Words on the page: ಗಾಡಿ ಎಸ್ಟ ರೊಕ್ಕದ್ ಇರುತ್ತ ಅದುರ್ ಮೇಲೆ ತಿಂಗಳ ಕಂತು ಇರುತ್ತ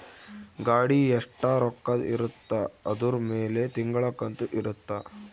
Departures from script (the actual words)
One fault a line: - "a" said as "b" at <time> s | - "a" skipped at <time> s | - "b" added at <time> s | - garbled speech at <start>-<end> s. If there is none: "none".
none